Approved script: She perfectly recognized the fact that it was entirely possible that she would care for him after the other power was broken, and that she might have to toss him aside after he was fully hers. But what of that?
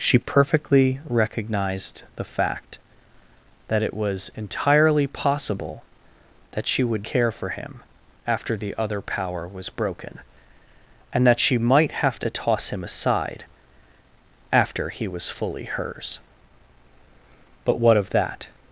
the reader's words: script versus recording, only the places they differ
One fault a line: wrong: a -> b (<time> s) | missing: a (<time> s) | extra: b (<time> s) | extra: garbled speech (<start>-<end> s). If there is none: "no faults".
no faults